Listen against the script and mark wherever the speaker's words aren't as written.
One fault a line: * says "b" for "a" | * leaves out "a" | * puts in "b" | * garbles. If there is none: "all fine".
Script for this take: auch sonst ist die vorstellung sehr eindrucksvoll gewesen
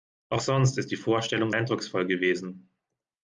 * leaves out "sehr"